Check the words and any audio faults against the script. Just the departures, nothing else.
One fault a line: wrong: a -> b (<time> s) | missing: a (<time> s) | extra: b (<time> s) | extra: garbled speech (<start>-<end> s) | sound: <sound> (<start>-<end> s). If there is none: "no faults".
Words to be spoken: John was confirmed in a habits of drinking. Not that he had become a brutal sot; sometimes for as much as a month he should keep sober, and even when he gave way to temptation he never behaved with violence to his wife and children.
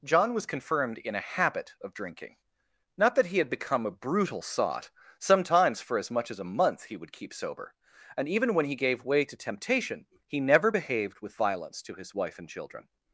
wrong: habits -> habit (1.2 s)
wrong: should -> would (7.0 s)